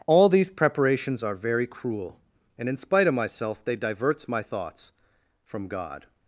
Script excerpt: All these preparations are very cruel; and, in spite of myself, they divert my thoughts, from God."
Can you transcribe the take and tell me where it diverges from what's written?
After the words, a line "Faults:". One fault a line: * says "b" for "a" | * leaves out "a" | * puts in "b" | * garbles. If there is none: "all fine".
All these preparations are very cruel; and, in spite of myself, they diverts my thoughts, from God."
Faults:
* says "diverts" for "divert"